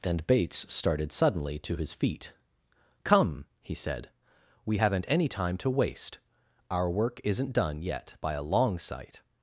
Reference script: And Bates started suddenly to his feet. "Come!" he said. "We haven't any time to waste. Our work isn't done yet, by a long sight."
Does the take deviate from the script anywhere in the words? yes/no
no